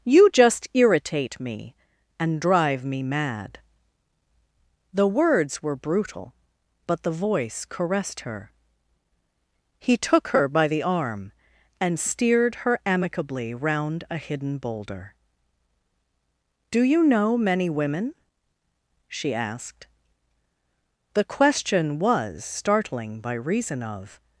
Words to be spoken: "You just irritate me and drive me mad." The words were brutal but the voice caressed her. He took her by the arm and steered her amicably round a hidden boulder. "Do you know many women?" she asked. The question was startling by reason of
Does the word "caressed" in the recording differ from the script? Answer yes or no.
no